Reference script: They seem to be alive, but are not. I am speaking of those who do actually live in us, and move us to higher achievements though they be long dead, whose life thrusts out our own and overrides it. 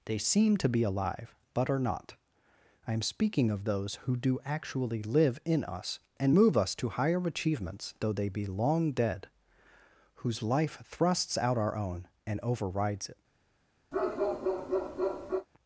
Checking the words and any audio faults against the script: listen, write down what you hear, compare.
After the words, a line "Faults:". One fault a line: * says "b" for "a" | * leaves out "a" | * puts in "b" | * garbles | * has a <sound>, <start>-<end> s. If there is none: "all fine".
They seem to be alive, but are not. I am speaking of those who do actually live in us, and move us to higher achievements though they be long dead, whose life thrusts out our own and overrides it.
Faults:
* has a bark, 13.9-15.5 s